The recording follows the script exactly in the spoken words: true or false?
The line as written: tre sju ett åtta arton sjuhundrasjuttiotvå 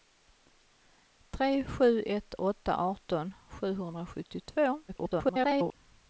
false